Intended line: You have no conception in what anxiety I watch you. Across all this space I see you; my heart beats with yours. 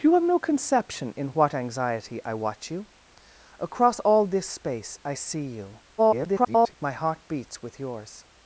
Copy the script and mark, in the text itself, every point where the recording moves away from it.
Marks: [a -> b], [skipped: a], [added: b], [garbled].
You have no conception in what anxiety I watch you. Across all this space I see you; [garbled] my heart beats with yours.